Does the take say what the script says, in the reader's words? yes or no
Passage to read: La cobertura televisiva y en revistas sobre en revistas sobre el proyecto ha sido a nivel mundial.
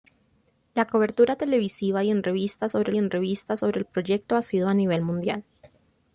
yes